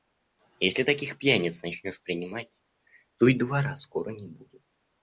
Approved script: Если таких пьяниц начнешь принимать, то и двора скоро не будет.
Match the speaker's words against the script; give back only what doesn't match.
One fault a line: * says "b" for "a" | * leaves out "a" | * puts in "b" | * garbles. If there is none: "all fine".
all fine